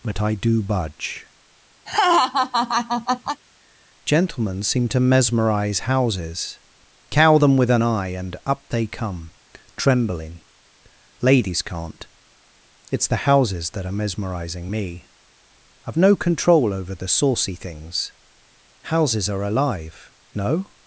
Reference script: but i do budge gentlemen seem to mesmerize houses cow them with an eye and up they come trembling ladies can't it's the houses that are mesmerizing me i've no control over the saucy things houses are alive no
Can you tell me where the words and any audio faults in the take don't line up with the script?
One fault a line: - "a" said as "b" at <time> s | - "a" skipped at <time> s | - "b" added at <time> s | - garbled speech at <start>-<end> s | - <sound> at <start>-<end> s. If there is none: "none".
- laugh at 1.9-3.4 s